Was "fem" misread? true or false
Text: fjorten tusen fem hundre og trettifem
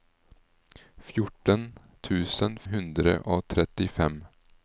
true